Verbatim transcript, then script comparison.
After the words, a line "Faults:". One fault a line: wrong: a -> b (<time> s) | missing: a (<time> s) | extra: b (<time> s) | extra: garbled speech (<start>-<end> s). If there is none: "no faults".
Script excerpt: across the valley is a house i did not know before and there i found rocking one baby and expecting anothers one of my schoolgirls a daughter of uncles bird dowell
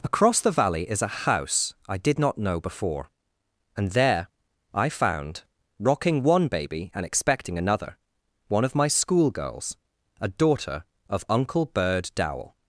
across the valley is a house i did not know before and there i found rocking one baby and expecting another one of my schoolgirls a daughter of uncle bird dowell
Faults:
wrong: anothers -> another (7.6 s)
wrong: uncles -> uncle (11.3 s)